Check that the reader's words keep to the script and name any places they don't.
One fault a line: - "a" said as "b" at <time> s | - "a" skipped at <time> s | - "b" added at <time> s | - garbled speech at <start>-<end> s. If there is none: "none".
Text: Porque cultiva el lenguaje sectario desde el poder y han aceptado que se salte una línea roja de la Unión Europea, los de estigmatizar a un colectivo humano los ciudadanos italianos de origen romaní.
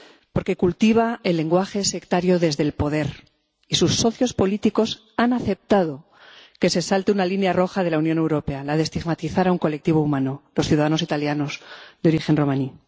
- "sus socios políticos" added at 3.8 s
- "los" said as "la" at 8.6 s